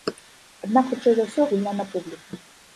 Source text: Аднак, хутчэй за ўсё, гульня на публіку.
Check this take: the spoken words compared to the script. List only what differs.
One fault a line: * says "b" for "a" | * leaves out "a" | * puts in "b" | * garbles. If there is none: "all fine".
all fine